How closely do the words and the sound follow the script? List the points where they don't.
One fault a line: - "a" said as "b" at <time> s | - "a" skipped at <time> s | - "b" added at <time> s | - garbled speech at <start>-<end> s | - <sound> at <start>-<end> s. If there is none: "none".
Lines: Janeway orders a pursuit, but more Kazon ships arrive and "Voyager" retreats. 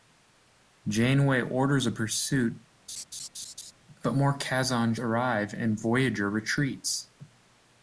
- laugh at 2.9-3.7 s
- "ships" skipped at 5.0 s